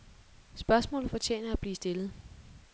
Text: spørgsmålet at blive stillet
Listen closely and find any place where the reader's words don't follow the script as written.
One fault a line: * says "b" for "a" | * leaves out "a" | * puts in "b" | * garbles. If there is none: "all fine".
* puts in "fortjener"